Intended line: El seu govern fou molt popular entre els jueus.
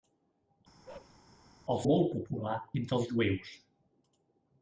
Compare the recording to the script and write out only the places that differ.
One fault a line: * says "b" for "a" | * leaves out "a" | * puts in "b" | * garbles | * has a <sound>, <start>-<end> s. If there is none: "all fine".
* has a bark, 0.8-1.2 s
* leaves out "seu govern fou"